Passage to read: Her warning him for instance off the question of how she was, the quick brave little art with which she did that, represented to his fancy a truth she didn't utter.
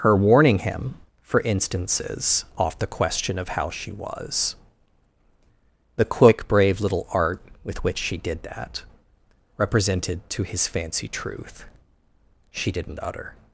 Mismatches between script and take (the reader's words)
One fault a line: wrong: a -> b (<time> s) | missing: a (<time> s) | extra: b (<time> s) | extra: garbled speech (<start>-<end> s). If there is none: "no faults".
wrong: instance -> instances (1.4 s)
missing: a (11.1 s)